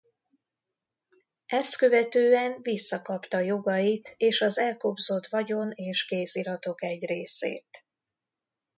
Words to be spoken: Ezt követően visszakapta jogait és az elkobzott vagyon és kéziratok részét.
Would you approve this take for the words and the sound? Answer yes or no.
no